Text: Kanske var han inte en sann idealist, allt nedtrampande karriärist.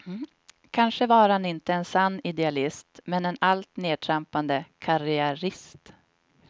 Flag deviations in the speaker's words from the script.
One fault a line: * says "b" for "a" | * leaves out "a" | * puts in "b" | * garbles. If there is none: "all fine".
* puts in "men en"